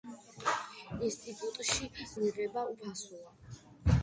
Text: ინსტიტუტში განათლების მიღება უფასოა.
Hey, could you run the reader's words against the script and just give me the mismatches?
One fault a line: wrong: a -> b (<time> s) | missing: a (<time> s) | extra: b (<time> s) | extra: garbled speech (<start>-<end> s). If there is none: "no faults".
missing: განათლების (1.9 s)